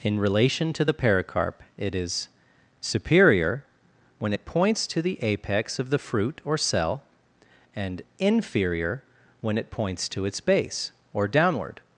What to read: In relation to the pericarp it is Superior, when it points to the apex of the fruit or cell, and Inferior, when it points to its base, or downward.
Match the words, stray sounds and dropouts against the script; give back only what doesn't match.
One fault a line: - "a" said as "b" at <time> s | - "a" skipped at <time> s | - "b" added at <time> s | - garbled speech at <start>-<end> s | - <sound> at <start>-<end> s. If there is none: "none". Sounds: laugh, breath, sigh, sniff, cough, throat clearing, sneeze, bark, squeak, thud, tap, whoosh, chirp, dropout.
none